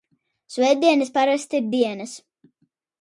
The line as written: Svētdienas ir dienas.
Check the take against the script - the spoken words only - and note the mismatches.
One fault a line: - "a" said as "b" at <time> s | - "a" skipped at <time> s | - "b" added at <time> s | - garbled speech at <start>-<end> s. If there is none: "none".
- "parasti" added at 1.2 s